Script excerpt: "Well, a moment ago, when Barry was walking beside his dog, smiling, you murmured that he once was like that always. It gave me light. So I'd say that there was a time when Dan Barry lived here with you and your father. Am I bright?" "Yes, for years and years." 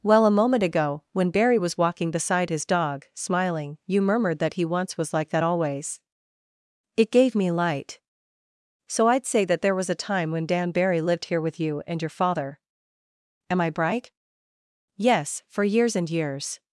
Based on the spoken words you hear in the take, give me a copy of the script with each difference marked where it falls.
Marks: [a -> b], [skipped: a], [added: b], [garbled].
"Well, a moment ago, when Barry was walking beside his dog, smiling, you murmured that he once was like that always. It gave me light. So I'd say that there was a time when Dan Barry lived here with you and your father. Am I bright?" "Yes, for years and years."